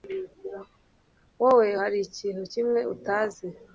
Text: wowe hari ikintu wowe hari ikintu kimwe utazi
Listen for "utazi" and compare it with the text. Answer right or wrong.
right